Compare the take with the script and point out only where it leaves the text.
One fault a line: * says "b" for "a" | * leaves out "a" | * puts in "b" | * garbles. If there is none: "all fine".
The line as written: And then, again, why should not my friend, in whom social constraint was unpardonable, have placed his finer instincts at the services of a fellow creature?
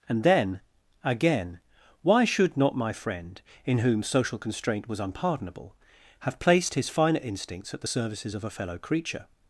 all fine